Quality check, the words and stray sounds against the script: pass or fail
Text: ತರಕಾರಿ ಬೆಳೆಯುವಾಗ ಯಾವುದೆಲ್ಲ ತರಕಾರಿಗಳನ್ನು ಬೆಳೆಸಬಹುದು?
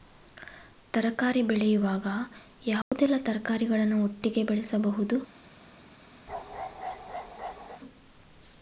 fail